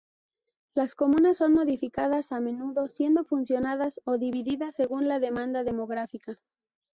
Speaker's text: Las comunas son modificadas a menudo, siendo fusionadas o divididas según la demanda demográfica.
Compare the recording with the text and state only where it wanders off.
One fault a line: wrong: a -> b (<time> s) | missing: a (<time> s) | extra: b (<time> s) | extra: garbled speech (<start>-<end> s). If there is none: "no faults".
no faults